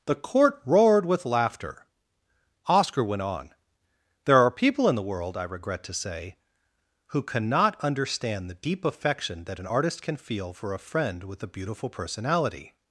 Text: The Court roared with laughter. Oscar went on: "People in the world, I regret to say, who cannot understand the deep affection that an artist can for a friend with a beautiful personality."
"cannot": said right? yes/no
yes